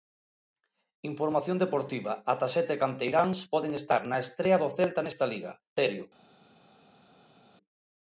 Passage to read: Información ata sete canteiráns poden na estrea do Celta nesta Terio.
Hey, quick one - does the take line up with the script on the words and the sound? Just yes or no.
no